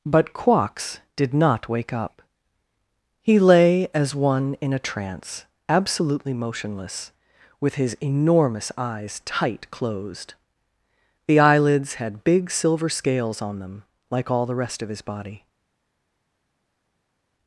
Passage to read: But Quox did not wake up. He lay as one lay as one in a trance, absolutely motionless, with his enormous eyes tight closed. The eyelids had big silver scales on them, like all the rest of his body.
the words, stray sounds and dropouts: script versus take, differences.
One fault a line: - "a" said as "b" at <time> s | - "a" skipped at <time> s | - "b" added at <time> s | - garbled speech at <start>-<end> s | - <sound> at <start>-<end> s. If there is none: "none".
- "lay as one" skipped at 4.5 s